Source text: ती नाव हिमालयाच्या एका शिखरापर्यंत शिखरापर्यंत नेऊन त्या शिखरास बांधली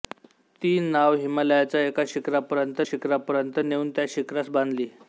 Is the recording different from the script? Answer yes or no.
no